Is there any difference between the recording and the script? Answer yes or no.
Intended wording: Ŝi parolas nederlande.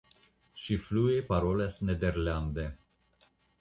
yes